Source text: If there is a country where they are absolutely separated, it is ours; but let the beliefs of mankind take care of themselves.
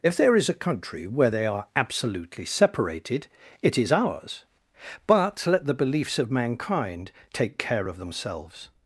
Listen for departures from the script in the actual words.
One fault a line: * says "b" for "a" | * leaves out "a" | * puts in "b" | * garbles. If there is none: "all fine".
all fine